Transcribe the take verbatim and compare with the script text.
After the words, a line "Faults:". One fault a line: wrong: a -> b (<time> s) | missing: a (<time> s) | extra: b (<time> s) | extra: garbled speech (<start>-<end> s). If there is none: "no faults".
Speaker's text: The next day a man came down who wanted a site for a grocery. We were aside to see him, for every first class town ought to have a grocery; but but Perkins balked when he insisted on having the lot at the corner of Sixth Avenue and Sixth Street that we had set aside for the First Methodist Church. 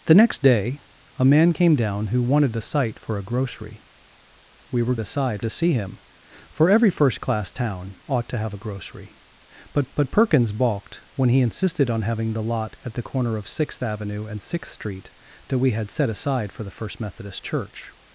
The next day a man came down who wanted a site for a grocery. We were aside to see him, for every first class town ought to have a grocery; but but Perkins balked when he insisted on having the lot at the corner of Sixth Avenue and Sixth Street that we had set aside for the First Methodist Church.
Faults:
no faults